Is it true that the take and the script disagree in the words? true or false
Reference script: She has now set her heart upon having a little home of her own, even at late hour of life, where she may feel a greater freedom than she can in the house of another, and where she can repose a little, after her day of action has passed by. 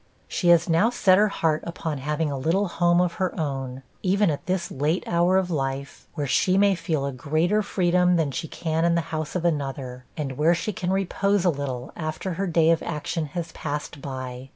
true